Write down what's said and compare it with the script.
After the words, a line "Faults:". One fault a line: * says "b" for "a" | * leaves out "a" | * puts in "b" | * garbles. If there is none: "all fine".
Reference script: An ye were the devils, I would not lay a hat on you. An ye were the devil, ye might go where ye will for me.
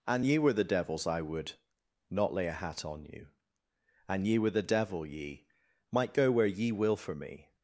An ye were the devils, I would not lay a hat on you. An ye were the devil, ye might go where ye will for me.
Faults:
all fine